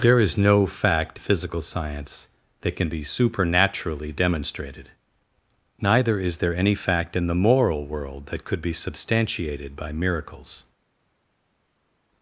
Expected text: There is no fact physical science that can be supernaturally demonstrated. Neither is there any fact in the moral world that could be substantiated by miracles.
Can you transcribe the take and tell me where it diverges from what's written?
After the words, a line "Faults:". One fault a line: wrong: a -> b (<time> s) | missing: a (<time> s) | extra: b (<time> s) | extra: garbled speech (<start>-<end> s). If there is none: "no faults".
There is no fact physical science that can be supernaturally demonstrated. Neither is there any fact in the moral world that could be substantiated by miracles.
Faults:
no faults